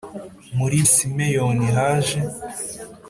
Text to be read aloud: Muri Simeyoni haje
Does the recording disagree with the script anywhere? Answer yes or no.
no